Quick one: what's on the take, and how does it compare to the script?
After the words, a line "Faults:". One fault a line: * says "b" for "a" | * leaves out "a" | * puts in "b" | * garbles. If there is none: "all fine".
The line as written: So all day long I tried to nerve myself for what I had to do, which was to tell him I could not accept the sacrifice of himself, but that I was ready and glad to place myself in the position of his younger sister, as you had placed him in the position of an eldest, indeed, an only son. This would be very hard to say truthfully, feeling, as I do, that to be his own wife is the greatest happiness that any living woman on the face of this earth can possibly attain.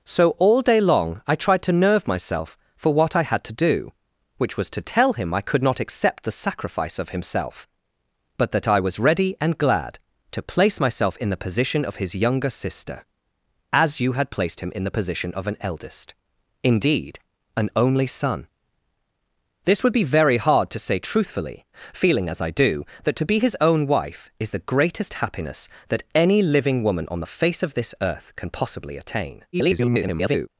So all day long I tried to nerve myself for what I had to do, which was to tell him I could not accept the sacrifice of himself, but that I was ready and glad to place myself in the position of his younger sister, as you had placed him in the position of an eldest, indeed, an only son. This would be very hard to say truthfully, feeling, as I do, that to be his own wife is the greatest happiness that any living woman on the face of this earth can possibly attain. [garbled]
Faults:
* garbles